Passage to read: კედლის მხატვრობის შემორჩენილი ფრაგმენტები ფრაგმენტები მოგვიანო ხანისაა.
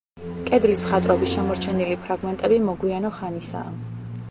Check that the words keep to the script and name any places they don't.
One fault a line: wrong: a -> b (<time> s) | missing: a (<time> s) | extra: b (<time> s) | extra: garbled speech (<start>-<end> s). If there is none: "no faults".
missing: ფრაგმენტები (2.6 s)